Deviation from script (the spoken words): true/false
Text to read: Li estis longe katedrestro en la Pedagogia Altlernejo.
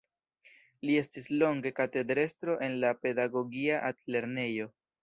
false